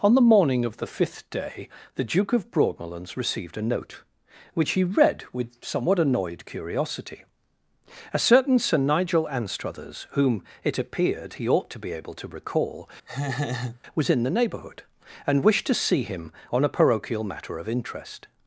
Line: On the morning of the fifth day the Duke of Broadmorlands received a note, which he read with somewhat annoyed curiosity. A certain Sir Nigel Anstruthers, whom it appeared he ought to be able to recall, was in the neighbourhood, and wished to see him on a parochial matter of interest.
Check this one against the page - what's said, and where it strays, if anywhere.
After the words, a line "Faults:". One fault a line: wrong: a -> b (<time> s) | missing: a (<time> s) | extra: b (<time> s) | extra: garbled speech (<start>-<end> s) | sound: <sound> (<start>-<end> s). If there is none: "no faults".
On the morning of the fifth day the Duke of Broadmorlands received a note, which he read with somewhat annoyed curiosity. A certain Sir Nigel Anstruthers, whom it appeared he ought to be able to recall, was in the neighbourhood, and wished to see him on a parochial matter of interest.
Faults:
sound: laugh (13.1-13.8 s)